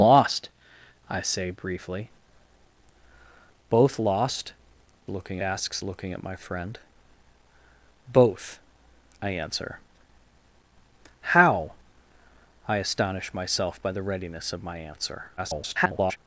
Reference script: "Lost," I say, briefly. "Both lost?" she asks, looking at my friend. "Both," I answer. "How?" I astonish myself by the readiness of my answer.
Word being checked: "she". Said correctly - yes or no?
no